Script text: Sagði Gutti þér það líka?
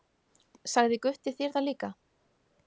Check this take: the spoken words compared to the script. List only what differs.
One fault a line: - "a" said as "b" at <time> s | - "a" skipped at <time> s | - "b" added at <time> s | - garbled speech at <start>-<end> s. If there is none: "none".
none